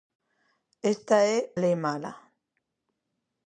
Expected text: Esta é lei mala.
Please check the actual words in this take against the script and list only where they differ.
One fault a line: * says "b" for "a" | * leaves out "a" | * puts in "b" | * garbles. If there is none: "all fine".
all fine